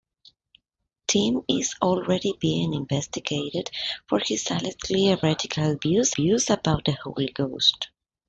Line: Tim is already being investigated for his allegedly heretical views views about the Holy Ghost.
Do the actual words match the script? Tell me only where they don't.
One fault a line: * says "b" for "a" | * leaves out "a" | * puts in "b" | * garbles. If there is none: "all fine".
all fine